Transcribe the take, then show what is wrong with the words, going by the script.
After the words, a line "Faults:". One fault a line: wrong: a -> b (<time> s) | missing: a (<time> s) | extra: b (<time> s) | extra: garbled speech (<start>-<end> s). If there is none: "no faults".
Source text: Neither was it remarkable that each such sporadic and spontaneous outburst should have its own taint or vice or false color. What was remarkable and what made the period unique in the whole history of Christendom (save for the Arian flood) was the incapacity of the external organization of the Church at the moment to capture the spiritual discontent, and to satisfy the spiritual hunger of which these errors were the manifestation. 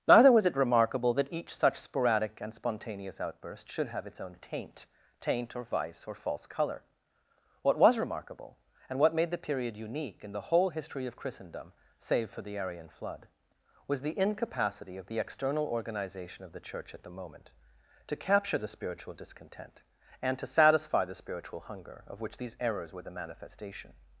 Neither was it remarkable that each such sporadic and spontaneous outburst should have its own taint taint or vice or false color. What was remarkable and what made the period unique in the whole history of Christendom (save for the Arian flood) was the incapacity of the external organization of the Church at the moment to capture the spiritual discontent, and to satisfy the spiritual hunger of which these errors were the manifestation.
Faults:
extra: taint (5.2 s)